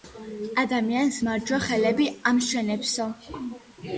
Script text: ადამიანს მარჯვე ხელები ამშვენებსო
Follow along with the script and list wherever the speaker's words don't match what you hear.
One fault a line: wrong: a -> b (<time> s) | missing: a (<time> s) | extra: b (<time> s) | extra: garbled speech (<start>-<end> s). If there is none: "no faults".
no faults